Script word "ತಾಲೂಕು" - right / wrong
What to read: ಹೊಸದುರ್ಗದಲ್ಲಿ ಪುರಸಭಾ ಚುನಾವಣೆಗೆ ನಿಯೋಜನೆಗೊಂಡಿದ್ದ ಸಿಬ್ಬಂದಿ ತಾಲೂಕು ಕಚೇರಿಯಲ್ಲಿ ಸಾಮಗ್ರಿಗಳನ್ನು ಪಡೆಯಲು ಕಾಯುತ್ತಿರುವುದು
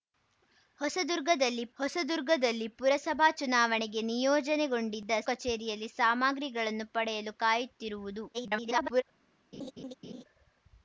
wrong